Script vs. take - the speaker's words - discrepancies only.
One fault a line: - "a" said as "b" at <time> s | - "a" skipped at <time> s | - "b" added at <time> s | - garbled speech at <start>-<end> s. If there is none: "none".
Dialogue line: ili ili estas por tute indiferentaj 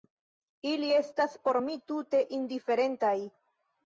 - "ili" skipped at 0.9 s
- "mi" added at 1.6 s